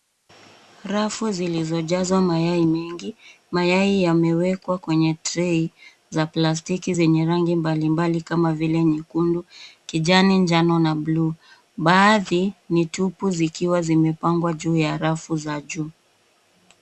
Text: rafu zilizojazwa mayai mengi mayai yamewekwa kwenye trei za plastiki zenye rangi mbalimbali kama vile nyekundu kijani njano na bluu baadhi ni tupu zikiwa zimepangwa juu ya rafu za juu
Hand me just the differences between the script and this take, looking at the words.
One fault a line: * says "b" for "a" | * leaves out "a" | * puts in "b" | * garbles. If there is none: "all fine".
all fine